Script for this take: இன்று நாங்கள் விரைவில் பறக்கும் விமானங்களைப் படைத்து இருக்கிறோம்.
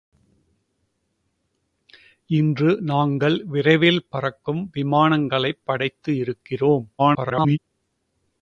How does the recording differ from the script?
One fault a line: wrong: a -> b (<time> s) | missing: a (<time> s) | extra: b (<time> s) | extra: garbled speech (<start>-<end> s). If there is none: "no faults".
extra: garbled speech (7.0-7.6 s)